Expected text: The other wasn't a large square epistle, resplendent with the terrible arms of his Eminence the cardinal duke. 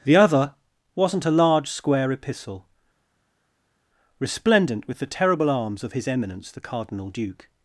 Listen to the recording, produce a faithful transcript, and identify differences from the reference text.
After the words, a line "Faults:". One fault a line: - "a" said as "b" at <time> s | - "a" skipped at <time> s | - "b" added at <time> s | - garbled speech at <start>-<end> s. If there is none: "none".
The other wasn't a large square epistle, resplendent with the terrible arms of his Eminence the cardinal duke.
Faults:
none